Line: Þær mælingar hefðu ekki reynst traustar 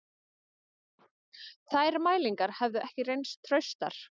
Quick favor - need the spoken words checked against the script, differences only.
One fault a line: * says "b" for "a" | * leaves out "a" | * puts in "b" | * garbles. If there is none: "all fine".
all fine